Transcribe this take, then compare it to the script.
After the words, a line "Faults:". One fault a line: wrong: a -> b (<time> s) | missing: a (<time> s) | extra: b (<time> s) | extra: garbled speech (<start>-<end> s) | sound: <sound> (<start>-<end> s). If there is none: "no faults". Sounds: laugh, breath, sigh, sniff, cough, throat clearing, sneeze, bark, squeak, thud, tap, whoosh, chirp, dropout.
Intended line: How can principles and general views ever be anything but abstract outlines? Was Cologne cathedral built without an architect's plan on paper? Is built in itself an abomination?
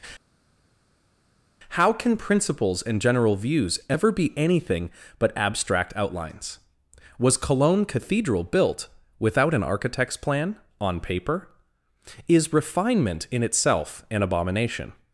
How can principles and general views ever be anything but abstract outlines? Was Cologne cathedral built without an architect's plan on paper? Is refinement in itself an abomination?
Faults:
wrong: built -> refinement (12.5 s)